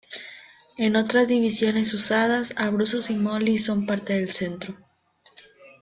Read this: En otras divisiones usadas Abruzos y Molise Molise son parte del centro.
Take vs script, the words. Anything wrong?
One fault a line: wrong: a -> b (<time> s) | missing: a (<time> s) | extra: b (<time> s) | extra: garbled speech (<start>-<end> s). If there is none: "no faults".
missing: Molise (3.6 s)